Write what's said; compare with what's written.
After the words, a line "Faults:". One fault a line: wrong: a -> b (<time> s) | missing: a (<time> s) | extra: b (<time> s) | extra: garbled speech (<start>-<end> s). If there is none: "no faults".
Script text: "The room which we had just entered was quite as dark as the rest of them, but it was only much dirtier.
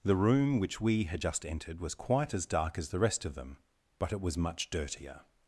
"The room which we had just entered was quite as dark as the rest of them, but it was much dirtier.
Faults:
missing: only (4.4 s)